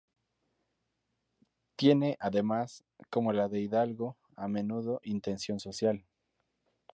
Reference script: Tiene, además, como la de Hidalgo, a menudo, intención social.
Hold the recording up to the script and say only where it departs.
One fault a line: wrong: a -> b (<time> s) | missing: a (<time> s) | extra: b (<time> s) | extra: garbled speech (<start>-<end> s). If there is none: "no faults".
no faults